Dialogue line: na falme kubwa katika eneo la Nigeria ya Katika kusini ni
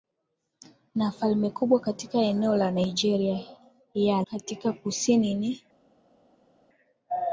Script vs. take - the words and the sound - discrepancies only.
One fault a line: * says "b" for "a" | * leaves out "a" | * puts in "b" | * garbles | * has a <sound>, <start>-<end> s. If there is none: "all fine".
all fine